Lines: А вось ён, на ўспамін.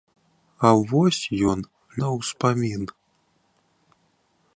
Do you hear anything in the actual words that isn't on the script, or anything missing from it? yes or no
no